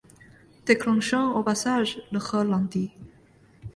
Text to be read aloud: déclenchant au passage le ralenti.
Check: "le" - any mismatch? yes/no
no